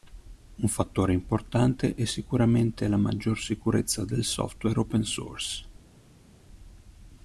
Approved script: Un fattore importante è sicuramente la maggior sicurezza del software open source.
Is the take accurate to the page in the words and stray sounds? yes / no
yes